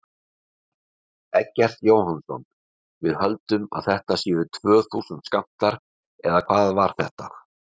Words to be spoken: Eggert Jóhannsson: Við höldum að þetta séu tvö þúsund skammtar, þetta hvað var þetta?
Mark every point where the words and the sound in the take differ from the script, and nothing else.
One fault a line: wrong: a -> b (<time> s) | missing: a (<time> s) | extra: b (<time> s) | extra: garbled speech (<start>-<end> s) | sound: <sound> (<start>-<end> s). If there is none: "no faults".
wrong: þetta -> eða (6.3 s)